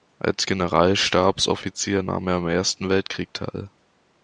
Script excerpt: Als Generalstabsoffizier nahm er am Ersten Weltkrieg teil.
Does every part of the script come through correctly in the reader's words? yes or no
yes